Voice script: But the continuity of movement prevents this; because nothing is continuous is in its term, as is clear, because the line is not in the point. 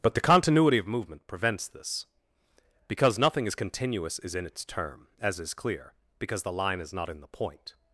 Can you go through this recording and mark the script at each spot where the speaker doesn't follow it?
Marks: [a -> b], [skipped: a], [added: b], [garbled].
But the continuity of movement prevents this; because nothing is continuous is in its term, as is clear, because the line is not in the point.